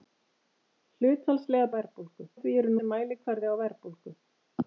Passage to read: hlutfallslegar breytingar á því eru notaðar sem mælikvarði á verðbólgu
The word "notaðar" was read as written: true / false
false